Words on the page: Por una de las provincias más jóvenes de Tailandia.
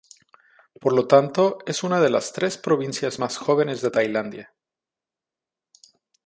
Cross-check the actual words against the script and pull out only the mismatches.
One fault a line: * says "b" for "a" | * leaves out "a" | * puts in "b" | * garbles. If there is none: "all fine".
* puts in "lo tanto es"
* puts in "tres"